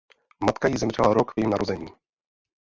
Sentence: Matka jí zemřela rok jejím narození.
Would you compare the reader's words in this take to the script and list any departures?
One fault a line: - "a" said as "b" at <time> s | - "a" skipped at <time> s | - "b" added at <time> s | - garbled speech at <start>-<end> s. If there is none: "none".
none